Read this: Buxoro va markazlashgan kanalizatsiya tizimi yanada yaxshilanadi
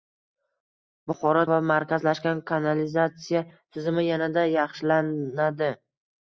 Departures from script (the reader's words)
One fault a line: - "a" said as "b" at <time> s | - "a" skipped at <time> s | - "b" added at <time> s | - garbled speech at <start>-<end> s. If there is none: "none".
none